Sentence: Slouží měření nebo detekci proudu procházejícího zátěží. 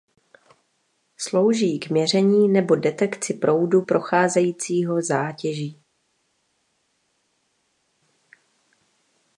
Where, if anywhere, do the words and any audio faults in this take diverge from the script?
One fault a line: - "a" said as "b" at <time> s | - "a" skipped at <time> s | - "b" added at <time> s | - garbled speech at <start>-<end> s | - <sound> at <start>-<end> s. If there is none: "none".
- "k" added at 1.8 s